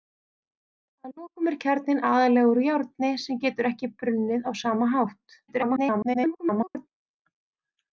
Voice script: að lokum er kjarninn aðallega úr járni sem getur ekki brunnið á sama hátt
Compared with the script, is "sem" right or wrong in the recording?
right